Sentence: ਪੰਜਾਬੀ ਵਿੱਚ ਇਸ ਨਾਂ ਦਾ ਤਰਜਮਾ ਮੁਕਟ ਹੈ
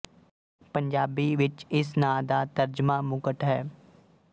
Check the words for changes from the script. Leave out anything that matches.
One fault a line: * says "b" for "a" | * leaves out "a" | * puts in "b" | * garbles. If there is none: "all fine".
all fine